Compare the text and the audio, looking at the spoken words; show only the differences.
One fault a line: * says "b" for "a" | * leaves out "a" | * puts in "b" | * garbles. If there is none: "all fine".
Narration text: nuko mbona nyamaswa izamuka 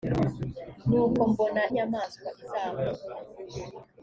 all fine